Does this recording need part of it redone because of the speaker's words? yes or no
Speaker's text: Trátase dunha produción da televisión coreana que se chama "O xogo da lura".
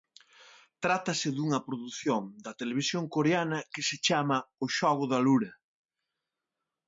no